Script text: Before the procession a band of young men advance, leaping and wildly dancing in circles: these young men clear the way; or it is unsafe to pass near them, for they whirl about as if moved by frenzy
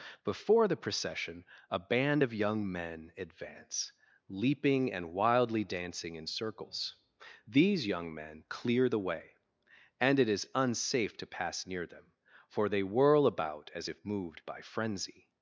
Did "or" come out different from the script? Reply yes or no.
yes